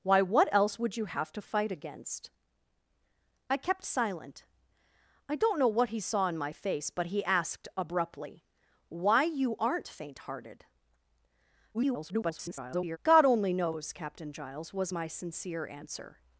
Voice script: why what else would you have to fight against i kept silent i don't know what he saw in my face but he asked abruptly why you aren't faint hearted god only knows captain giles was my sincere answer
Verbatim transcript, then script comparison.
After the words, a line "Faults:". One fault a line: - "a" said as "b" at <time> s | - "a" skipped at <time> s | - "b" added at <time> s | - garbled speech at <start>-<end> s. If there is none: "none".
why what else would you have to fight against i kept silent i don't know what he saw in my face but he asked abruptly why you aren't faint hearted [garbled] god only knows captain giles was my sincere answer
Faults:
- garbled speech at 11.7-13.0 s